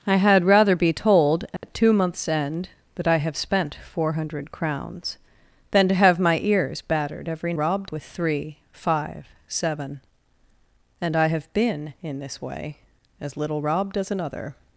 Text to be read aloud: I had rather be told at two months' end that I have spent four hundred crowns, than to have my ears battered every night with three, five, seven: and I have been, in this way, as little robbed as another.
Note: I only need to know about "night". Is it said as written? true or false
false